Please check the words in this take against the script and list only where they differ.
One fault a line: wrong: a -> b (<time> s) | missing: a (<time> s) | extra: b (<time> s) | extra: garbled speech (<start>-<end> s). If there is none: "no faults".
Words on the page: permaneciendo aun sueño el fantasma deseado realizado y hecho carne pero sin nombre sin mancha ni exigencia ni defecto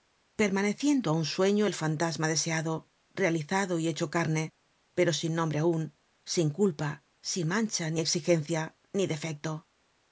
extra: aun sin culpa (5.6 s)